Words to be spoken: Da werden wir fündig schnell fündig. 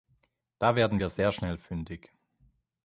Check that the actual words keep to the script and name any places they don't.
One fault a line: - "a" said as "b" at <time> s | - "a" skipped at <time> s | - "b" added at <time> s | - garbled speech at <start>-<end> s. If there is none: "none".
- "fündig" said as "sehr" at 1.1 s